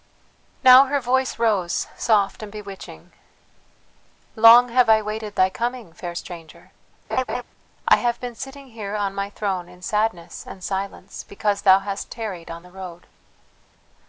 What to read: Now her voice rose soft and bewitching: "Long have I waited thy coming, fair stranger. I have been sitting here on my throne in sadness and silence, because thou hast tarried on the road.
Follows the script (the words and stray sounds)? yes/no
no